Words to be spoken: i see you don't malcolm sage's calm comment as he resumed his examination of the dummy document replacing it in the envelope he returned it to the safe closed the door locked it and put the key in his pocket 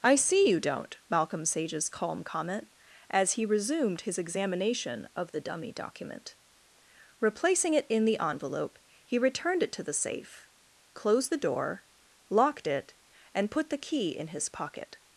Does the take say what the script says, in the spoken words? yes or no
yes